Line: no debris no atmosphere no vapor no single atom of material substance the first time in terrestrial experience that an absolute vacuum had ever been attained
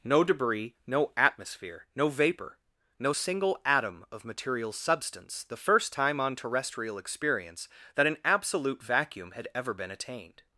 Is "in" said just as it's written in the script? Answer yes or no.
no